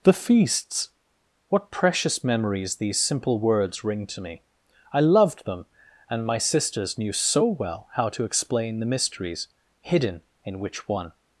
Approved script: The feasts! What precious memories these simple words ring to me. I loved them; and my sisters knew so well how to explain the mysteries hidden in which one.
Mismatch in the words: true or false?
false